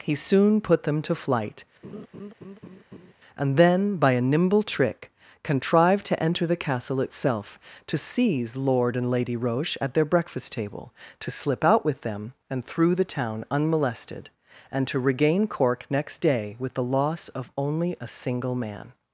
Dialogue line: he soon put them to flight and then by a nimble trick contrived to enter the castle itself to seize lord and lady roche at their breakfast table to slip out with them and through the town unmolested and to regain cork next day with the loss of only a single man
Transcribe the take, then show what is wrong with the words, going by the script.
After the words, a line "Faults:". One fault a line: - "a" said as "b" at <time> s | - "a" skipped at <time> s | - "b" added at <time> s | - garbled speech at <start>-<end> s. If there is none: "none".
he soon put them to flight and then by a nimble trick contrived to enter the castle itself to seize lord and lady roche at their breakfast table to slip out with them and through the town unmolested and to regain cork next day with the loss of only a single man
Faults:
none